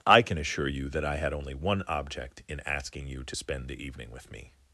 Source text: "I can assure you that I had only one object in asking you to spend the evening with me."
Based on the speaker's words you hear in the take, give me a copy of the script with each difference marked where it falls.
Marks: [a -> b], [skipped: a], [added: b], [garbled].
"I can assure you that I had only one object in asking you to spend the evening with me."